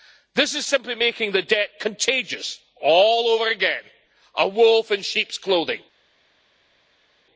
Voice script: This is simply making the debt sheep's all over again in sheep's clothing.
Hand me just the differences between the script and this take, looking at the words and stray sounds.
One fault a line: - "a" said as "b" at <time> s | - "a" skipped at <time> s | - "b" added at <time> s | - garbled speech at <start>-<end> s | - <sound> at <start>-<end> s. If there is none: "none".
- "sheep's" said as "contagious" at 1.8 s
- "a wolf" added at 4.3 s